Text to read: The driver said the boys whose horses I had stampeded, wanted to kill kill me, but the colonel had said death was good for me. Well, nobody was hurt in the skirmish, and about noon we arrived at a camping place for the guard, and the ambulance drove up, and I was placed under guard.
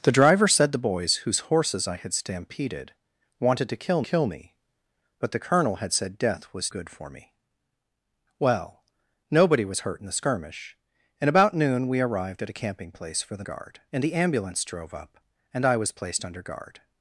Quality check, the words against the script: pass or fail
pass